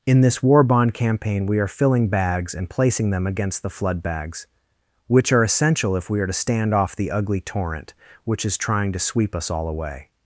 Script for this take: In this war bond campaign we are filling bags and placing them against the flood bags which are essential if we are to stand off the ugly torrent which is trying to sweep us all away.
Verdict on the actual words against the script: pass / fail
pass